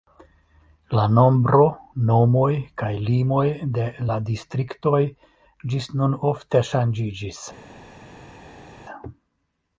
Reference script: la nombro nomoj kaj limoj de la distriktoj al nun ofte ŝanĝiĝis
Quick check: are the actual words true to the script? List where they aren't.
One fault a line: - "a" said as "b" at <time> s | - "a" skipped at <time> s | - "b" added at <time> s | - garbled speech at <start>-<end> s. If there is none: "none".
- "al" said as "ĝis" at 5.8 s